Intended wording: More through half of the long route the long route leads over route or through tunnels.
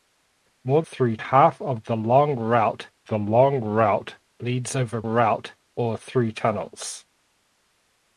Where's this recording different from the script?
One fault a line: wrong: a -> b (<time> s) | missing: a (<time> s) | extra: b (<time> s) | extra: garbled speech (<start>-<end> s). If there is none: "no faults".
no faults